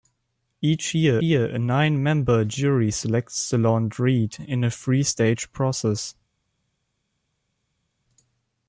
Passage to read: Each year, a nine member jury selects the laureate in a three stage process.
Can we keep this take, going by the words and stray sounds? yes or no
no